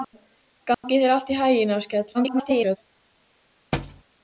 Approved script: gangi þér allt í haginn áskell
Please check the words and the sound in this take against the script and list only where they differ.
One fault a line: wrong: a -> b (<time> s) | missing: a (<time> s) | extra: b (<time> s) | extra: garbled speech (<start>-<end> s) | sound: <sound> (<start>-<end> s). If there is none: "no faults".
sound: dropout (0.7-0.8 s)
extra: garbled speech (2.1-2.8 s)
sound: thud (3.7-4.0 s)